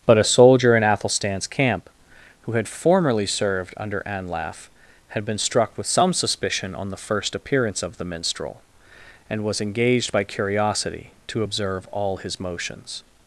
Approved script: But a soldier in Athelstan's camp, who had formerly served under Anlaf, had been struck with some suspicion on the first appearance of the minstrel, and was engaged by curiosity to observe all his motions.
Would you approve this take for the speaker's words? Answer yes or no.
yes